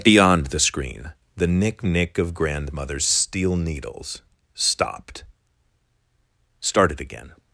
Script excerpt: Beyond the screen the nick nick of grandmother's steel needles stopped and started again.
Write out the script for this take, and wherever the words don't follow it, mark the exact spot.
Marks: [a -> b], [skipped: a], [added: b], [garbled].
Beyond the screen the nick nick of grandmother's steel needles stopped [skipped: and] started again.